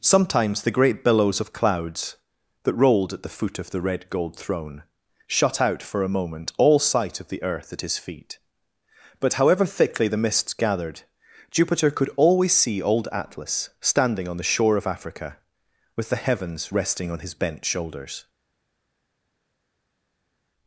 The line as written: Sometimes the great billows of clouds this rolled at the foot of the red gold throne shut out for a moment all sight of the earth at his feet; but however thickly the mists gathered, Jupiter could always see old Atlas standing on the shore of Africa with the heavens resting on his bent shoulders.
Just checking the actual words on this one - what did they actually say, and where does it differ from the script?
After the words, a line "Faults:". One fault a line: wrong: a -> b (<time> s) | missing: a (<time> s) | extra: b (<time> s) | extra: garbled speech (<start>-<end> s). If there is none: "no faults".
Sometimes the great billows of clouds that rolled at the foot of the red gold throne shut out for a moment all sight of the earth at his feet; but however thickly the mists gathered, Jupiter could always see old Atlas standing on the shore of Africa with the heavens resting on his bent shoulders.
Faults:
wrong: this -> that (2.6 s)